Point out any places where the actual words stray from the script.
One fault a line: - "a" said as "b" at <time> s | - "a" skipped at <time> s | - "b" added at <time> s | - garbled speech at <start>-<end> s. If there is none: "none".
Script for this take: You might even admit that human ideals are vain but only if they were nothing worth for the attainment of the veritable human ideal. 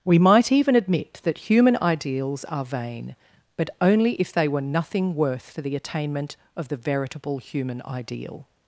- "You" said as "We" at 0.0 s